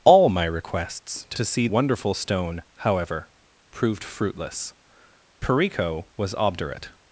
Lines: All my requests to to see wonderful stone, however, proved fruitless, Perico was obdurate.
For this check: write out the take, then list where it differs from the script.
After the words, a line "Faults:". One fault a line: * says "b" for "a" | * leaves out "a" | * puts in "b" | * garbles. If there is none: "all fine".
All my requests to to see wonderful stone, however, proved fruitless, Perico was obdurate.
Faults:
all fine